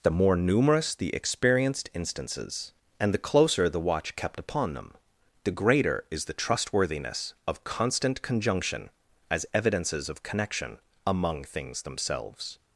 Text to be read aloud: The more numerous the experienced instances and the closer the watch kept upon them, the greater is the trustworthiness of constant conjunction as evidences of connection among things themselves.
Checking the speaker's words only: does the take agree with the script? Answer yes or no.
yes